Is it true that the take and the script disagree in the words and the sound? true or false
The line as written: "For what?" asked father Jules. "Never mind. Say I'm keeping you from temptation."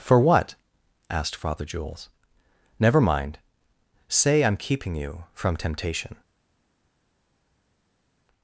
false